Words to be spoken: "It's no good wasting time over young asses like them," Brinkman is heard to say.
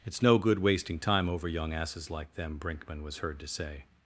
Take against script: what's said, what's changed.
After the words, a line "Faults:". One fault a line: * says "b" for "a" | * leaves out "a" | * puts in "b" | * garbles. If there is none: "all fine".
"It's no good wasting time over young asses like them," Brinkman was heard to say.
Faults:
* says "was" for "is"